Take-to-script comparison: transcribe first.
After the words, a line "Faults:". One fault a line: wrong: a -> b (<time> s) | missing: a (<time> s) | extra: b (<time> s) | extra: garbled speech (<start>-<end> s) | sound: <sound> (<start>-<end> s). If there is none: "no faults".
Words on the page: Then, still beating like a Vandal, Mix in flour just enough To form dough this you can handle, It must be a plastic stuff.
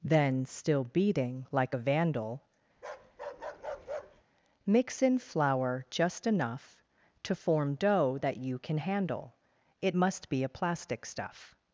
Then, still beating like a Vandal, Mix in flour just enough To form dough that you can handle, It must be a plastic stuff.
Faults:
sound: bark (2.7-4.2 s)
wrong: this -> that (8.2 s)